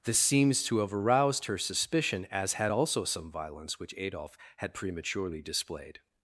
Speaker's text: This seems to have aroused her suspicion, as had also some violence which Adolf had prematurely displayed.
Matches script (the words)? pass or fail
pass